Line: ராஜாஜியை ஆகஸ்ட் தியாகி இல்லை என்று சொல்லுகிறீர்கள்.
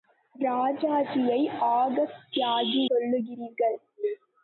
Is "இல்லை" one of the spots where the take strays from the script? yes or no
yes